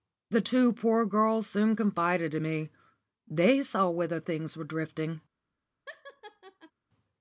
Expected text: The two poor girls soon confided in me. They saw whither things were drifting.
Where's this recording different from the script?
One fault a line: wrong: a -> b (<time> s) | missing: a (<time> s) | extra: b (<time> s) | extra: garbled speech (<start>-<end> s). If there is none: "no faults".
no faults